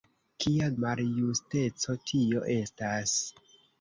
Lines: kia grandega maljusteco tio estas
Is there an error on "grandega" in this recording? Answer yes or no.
yes